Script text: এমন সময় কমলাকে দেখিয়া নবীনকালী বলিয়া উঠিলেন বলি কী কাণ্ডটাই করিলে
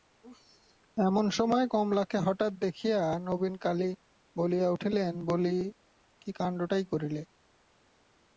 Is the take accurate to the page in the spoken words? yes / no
no